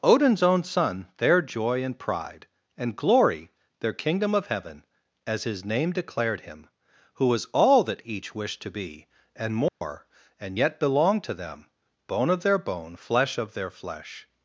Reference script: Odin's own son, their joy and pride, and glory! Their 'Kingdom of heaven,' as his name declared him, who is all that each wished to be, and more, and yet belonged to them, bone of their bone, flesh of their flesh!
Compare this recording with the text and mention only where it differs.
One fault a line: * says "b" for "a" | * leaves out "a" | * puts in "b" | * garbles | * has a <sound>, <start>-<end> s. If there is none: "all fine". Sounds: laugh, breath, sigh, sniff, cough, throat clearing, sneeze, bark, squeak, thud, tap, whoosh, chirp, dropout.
* says "was" for "is"
* has a dropout, 9.7-9.8 s